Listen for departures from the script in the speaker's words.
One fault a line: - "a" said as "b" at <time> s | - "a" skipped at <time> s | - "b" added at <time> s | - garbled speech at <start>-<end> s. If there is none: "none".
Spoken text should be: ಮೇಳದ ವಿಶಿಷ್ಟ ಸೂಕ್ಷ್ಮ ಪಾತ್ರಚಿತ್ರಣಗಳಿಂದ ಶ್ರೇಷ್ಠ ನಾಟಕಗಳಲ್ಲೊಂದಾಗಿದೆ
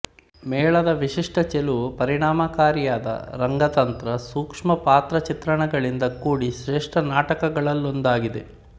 - "ಚೆಲುವು ಪರಿಣಾಮಕಾರಿಯಾದ ರಂಗತಂತ್ರ" added at 1.5 s
- "ಕೂಡಿ" added at 6.2 s